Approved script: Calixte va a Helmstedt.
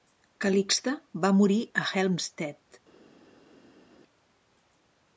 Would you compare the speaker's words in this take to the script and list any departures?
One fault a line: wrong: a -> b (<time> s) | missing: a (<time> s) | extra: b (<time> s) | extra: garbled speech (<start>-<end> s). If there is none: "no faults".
extra: morir (1.4 s)